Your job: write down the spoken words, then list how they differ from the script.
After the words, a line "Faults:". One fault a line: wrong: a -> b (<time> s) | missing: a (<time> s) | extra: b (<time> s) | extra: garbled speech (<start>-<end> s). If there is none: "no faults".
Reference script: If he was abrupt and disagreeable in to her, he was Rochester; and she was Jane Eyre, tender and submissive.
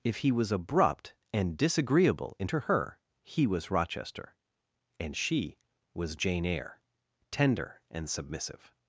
If he was abrupt and disagreeable in to her, he was Rochester; and she was Jane Eyre, tender and submissive.
Faults:
no faults